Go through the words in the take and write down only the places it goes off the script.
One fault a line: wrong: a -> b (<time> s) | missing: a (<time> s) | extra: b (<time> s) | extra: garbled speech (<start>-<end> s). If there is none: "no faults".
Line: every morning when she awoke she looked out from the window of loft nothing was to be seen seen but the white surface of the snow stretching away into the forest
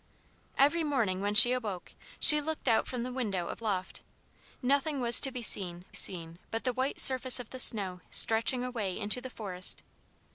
no faults